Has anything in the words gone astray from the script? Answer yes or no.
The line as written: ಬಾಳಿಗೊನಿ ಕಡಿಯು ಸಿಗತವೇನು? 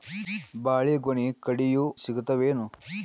no